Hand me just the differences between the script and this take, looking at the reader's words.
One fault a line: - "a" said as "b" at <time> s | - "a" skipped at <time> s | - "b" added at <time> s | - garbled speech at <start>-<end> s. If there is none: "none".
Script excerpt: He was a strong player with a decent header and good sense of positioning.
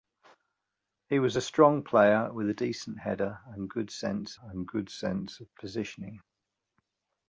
- "and good sense" added at 4.4 s